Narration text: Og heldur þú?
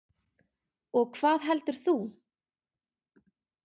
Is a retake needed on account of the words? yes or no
yes